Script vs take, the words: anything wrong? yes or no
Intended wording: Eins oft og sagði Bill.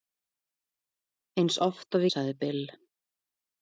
no